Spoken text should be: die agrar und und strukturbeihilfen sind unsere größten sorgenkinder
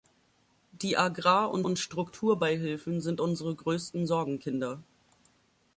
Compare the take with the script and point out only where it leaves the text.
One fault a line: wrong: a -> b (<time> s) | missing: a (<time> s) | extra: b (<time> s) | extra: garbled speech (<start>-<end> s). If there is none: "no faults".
no faults